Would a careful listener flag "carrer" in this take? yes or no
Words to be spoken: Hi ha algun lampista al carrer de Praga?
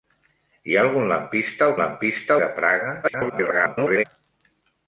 yes